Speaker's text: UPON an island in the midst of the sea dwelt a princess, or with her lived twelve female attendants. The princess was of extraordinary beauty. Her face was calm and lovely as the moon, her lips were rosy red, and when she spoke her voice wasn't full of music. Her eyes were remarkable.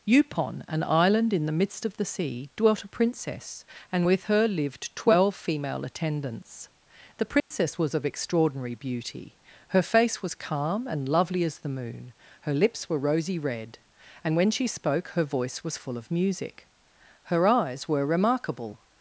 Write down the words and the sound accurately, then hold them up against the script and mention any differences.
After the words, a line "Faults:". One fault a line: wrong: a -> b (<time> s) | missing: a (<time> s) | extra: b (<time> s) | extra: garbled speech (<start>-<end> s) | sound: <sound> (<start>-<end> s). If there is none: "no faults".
UPON an island in the midst of the sea dwelt a princess, and with her lived twelve female attendants. The princess was of extraordinary beauty. Her face was calm and lovely as the moon, her lips were rosy red, and when she spoke her voice was full of music. Her eyes were remarkable.
Faults:
wrong: or -> and (3.9 s)
sound: dropout (7.4-7.5 s)
wrong: wasn't -> was (15.6 s)